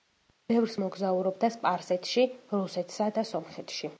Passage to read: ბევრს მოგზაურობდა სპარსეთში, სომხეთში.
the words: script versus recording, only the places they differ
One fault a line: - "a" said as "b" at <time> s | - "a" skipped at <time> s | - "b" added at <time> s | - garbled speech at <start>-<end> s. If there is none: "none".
- "რუსეთსა და" added at 2.6 s